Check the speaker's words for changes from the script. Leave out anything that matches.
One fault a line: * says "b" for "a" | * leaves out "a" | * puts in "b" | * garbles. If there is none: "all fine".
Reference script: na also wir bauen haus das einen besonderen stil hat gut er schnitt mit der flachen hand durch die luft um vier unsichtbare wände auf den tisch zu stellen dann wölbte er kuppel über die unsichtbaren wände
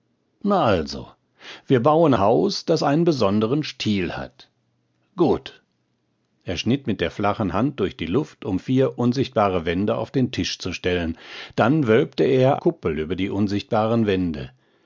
all fine